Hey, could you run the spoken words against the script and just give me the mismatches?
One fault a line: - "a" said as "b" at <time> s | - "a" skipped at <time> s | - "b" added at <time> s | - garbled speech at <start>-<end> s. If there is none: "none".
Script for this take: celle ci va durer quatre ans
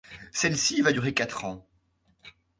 none